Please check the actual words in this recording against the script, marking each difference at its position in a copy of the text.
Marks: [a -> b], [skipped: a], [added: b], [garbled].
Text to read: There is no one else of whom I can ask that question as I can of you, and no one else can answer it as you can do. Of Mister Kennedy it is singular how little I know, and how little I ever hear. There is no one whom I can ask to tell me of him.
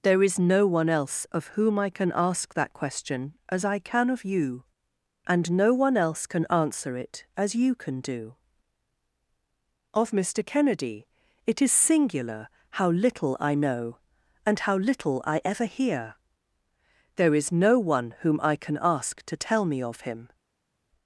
There is no one else of whom I can ask that question as I can of you, and no one else can answer it as you can do. Of Mister Kennedy it is singular how little I know, and how little I ever hear. There is no one whom I can ask to tell me of him.